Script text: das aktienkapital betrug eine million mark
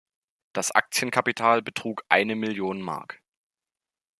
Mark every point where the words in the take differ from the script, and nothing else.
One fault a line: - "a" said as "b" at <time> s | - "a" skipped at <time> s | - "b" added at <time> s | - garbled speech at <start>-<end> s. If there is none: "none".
none